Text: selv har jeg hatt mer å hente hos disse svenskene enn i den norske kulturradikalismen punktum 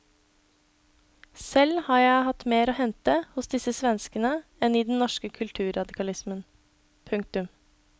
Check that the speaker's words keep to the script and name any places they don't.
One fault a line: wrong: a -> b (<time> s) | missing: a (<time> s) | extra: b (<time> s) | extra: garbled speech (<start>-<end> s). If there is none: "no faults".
no faults